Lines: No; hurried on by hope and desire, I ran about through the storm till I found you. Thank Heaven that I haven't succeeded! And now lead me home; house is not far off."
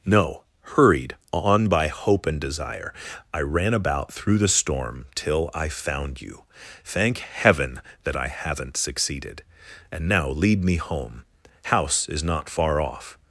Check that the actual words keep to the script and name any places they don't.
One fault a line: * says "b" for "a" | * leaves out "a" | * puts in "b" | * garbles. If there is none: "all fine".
all fine